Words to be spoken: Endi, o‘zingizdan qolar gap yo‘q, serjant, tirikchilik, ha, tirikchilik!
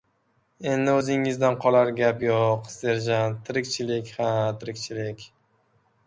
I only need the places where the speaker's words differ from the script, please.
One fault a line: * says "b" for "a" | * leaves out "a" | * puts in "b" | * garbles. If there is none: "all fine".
all fine